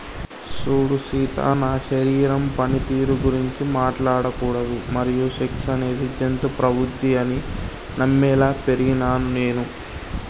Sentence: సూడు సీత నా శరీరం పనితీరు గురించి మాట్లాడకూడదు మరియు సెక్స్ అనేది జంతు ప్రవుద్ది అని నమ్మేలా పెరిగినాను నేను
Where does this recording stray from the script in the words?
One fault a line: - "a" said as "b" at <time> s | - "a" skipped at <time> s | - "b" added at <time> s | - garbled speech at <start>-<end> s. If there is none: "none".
none